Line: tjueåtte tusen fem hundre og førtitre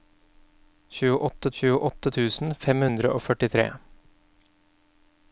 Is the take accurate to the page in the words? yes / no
no